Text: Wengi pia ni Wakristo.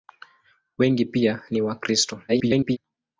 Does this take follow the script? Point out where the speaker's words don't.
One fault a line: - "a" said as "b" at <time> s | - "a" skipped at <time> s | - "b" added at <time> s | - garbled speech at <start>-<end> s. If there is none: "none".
- garbled speech at 2.3-2.8 s